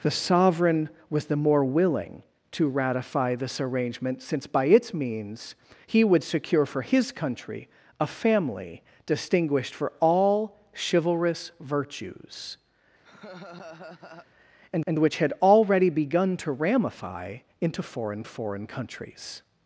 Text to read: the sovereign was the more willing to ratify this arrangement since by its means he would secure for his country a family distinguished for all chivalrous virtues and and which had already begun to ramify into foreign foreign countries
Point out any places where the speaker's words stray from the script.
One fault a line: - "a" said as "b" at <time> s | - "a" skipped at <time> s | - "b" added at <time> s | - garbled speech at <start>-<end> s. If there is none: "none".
none